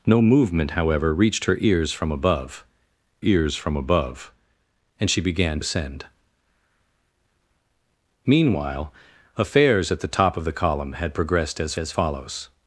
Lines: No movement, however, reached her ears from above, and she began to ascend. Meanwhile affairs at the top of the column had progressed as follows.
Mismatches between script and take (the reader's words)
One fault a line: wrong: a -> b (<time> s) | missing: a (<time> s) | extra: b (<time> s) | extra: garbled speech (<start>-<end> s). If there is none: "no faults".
extra: ears from above (3.2 s)
missing: to (5.6 s)
extra: as (11.8 s)